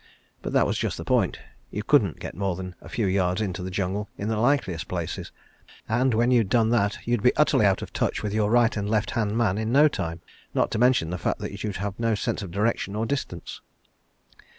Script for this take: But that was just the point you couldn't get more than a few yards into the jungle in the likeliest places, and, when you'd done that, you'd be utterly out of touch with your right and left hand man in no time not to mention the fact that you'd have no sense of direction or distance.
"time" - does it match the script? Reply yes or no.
yes